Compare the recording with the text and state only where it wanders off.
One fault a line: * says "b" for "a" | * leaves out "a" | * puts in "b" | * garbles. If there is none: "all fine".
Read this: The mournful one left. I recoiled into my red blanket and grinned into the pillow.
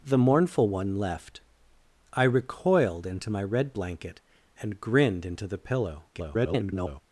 * garbles